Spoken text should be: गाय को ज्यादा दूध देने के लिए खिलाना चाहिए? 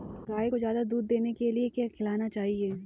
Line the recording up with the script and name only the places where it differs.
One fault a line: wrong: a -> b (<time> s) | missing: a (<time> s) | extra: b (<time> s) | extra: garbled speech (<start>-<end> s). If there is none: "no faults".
extra: क्या (1.7 s)